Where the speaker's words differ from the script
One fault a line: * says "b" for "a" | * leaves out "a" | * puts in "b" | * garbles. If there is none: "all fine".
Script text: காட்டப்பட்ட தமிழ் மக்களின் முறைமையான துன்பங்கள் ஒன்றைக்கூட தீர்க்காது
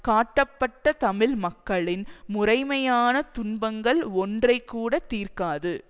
all fine